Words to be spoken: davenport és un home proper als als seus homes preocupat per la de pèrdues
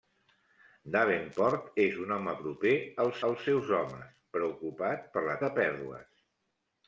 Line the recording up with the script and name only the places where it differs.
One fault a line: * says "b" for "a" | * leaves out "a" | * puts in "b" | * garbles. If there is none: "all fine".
all fine